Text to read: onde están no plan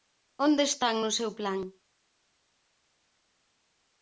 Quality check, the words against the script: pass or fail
fail